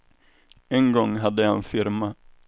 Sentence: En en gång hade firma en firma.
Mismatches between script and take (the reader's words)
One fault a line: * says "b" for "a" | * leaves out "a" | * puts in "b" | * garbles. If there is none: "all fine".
* leaves out "en"
* says "jag" for "firma"